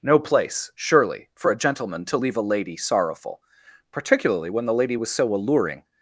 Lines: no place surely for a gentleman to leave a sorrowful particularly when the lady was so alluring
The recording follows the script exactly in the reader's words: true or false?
false